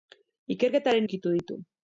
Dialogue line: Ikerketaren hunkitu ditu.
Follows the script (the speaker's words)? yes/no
yes